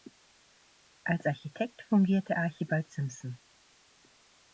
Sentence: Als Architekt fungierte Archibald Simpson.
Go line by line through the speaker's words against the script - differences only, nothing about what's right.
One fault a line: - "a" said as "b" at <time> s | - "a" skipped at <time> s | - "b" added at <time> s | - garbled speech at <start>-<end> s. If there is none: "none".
none